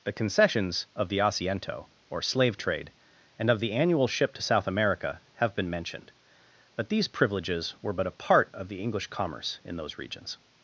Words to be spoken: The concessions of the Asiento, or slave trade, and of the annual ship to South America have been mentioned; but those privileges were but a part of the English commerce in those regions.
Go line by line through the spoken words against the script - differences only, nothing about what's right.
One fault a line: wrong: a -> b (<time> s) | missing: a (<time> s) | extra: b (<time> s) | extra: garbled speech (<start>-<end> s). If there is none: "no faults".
wrong: those -> these (6.9 s)